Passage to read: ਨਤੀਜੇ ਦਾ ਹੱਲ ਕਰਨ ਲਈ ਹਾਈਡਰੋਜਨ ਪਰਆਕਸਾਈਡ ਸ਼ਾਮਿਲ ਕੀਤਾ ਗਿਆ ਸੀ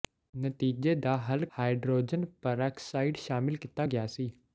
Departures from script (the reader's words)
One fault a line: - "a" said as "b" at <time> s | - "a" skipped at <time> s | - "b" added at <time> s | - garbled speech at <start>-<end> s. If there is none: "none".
- "ਕਰਨ ਲਈ" skipped at 1.4 s